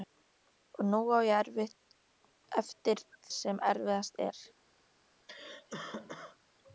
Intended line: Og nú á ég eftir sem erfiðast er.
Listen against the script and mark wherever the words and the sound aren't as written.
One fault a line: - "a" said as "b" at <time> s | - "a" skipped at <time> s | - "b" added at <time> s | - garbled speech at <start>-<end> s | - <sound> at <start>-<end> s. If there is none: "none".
- cough at 5.3-6.4 s